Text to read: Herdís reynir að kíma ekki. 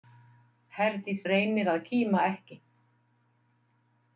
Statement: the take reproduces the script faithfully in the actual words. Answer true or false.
true